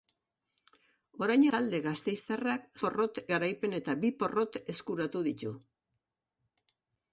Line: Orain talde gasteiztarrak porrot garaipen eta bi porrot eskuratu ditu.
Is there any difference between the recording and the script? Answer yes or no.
no